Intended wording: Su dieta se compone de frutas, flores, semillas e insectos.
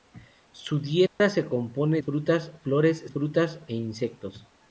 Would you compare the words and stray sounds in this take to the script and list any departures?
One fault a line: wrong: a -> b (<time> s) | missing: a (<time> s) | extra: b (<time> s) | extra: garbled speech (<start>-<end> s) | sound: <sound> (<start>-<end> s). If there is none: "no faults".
sound: dropout (1.1-1.2 s)
missing: de (2.0 s)
wrong: semillas -> frutas (3.1 s)